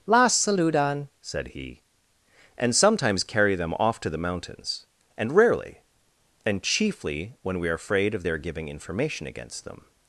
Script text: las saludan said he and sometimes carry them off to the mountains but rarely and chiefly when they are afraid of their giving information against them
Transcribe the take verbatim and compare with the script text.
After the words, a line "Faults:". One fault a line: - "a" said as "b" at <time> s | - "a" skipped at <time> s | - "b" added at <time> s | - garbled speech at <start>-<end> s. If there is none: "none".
las saludan said he and sometimes carry them off to the mountains and rarely and chiefly when we are afraid of their giving information against them
Faults:
- "but" said as "and" at 5.2 s
- "they" said as "we" at 7.6 s